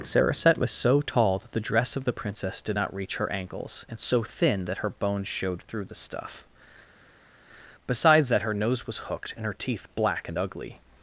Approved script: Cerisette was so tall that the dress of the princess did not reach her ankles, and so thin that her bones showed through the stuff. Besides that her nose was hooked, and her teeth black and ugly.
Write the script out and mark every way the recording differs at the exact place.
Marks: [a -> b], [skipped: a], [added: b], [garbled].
Cerisette was so tall that the dress of the princess did not reach her ankles, and so thin that her bones showed through the stuff. Besides that her nose was hooked, and her teeth black and ugly.